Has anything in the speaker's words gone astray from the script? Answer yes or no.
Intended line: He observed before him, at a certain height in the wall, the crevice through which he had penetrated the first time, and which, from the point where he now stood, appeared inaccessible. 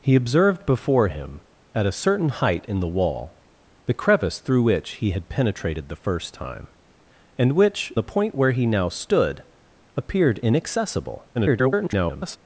yes